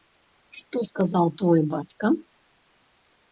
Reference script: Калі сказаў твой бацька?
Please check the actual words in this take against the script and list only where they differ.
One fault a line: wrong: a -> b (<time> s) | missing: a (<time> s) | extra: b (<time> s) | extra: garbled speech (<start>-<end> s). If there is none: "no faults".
wrong: Калі -> Што (0.6 s)